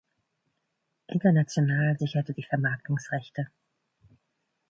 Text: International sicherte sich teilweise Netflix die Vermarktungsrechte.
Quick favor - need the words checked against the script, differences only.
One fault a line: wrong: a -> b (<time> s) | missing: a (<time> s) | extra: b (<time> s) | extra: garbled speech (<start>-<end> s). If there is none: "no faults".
missing: sich teilweise Netflix (2.3 s)